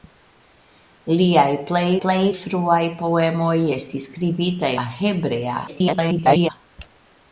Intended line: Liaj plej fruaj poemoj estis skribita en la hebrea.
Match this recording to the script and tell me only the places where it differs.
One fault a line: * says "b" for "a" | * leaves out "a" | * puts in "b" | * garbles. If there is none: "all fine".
* puts in "plej"
* leaves out "en"
* garbles